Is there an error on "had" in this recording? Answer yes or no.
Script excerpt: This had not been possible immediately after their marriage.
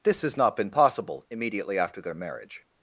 yes